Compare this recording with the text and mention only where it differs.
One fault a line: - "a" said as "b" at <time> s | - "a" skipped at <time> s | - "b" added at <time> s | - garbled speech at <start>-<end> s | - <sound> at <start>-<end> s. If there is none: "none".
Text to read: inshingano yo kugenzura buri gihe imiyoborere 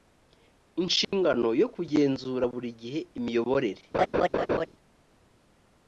- dropout at 1.0-1.1 s
- laugh at 3.9-4.7 s